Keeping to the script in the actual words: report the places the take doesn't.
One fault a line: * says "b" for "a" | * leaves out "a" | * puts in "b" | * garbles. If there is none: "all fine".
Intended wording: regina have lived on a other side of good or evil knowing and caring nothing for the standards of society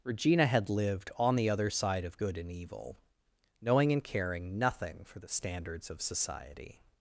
* says "had" for "have"
* says "the" for "a"
* says "and" for "or"